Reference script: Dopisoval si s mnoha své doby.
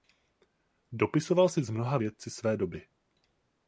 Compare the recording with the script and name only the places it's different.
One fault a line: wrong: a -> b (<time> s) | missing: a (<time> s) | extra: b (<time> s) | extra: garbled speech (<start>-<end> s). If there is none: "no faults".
extra: vědci (1.9 s)